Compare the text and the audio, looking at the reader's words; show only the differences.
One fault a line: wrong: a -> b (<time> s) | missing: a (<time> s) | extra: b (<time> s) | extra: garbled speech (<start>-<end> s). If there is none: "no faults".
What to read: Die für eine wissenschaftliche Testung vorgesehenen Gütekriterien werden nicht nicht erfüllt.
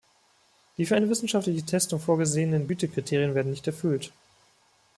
missing: nicht (3.6 s)